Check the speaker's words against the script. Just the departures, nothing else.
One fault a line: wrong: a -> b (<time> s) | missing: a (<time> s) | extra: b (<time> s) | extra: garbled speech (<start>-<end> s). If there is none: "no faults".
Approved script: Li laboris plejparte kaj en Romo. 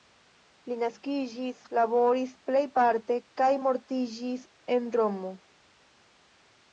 extra: naskiĝis (0.8 s)
extra: mortiĝis (3.6 s)